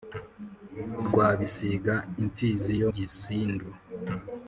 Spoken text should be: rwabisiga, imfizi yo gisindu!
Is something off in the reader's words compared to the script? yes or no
no